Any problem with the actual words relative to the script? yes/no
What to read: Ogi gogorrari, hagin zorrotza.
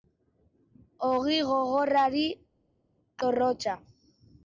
yes